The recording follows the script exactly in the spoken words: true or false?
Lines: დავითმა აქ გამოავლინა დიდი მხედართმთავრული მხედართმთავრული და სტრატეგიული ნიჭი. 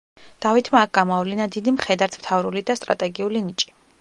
false